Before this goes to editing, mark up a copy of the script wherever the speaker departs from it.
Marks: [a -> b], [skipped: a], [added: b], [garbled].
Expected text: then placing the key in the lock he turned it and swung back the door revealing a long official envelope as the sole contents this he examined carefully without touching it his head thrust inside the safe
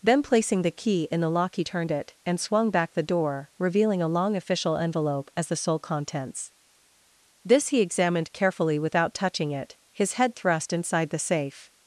then placing the key in the lock he turned it and swung back the door revealing a long official envelope as the sole contents this he examined carefully without touching it his head thrust inside the safe